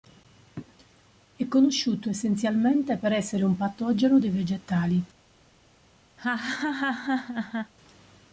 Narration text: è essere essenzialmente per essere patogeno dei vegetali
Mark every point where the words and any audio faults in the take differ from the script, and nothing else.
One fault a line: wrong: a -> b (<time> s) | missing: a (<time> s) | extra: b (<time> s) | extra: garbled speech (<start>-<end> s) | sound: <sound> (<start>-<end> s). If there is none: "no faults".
wrong: essere -> conosciuto (1.5 s)
extra: un (3.4 s)
sound: laugh (6.2-7.7 s)